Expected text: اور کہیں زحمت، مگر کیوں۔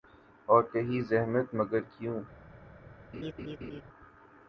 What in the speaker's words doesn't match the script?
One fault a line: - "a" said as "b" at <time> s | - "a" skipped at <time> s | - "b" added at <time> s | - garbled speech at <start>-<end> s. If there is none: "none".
none